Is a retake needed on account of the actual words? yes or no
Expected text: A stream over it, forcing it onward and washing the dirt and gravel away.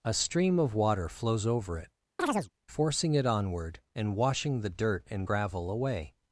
yes